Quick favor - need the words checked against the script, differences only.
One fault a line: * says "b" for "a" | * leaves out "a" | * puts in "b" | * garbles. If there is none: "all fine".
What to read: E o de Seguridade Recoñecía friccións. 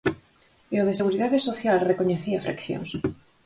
* puts in "Social"